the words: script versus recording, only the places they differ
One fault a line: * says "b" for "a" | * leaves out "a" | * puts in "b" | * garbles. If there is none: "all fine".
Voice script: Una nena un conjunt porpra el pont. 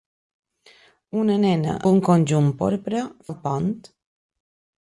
all fine